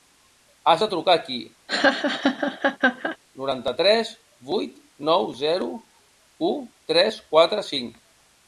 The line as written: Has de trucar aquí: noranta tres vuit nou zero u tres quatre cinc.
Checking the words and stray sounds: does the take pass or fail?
fail